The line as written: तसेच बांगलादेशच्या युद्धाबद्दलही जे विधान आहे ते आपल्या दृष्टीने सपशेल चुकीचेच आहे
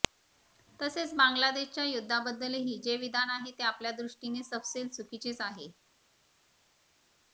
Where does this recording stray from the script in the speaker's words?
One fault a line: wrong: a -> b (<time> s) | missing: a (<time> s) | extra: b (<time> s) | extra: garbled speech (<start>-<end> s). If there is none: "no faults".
no faults